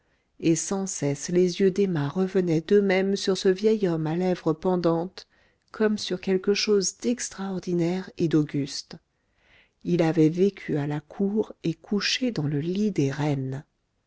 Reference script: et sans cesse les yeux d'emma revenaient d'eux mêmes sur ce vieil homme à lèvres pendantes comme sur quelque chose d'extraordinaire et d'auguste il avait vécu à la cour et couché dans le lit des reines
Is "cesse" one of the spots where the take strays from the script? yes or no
no